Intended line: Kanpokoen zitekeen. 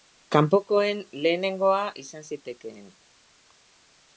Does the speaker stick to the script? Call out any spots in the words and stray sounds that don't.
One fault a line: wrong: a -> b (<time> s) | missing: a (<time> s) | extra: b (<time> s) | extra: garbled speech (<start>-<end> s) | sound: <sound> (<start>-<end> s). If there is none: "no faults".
extra: lehenengoa izan (1.2 s)